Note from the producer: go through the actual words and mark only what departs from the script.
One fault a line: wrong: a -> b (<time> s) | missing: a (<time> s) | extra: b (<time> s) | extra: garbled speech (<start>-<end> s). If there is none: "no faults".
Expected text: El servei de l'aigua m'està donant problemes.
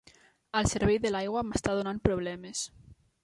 no faults